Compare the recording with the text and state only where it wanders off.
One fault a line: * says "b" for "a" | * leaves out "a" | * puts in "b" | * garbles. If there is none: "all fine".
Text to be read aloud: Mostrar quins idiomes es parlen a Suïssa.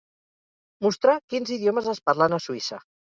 all fine